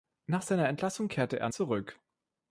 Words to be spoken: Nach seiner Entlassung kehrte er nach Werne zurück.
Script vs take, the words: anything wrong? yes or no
yes